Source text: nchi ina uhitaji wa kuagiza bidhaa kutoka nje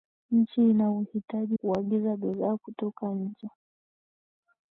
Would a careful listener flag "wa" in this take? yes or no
yes